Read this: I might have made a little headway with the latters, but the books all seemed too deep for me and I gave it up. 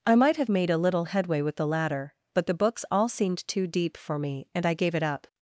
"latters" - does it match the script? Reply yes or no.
no